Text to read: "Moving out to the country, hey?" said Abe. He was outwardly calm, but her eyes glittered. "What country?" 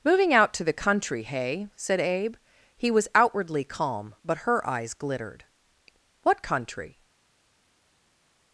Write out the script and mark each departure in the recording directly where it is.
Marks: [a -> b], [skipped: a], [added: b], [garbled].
"Moving out to the country, hey?" said Abe. He was outwardly calm, but her eyes glittered. "What country?"